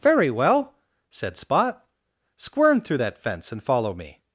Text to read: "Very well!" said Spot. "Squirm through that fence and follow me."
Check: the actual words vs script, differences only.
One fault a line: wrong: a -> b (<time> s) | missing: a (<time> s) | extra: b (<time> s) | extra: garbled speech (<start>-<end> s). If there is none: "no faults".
no faults